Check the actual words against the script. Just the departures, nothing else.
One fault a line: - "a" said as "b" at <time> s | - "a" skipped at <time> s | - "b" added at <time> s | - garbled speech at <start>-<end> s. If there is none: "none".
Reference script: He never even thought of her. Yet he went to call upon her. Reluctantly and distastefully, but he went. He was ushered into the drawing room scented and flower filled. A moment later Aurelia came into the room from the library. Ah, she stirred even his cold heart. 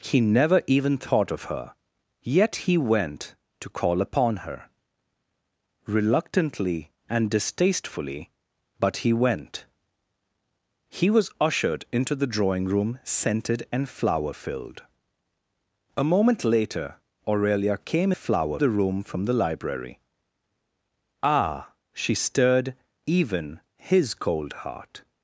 - "into" said as "flower" at 18.1 s